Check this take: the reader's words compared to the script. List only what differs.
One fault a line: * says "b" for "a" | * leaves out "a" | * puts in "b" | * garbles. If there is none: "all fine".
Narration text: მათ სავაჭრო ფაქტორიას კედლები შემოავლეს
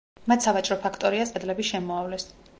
all fine